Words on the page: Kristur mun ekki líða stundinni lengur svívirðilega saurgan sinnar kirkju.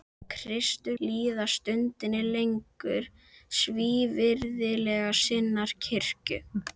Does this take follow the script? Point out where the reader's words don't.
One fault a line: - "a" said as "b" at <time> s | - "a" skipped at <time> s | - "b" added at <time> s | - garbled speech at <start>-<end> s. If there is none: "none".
- "mun ekki" skipped at 0.9 s
- "saurgan" skipped at 5.2 s